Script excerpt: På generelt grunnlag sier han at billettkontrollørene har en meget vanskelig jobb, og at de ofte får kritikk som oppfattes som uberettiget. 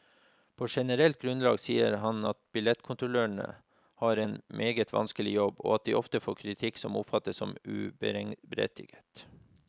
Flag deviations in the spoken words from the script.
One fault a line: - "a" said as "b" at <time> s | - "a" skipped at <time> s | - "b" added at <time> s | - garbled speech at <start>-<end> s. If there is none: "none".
none